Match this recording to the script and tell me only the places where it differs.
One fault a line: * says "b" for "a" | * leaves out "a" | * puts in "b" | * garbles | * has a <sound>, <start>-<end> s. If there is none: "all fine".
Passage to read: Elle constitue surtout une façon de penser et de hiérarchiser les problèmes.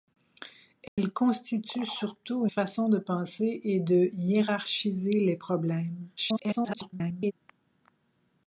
* has a dropout, 0.9-1.0 s
* leaves out "une"
* garbles